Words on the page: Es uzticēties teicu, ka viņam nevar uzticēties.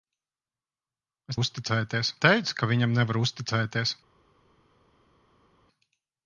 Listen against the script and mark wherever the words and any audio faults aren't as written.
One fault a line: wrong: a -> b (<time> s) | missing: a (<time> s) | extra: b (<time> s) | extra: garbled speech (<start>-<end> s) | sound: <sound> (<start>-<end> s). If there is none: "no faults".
no faults